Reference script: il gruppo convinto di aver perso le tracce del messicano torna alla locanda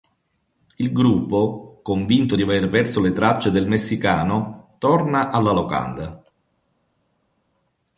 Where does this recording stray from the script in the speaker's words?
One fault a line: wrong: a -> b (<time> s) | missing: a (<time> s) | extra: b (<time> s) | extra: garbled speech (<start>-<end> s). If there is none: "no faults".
no faults